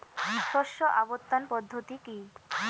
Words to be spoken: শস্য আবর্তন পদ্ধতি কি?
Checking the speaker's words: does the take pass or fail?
pass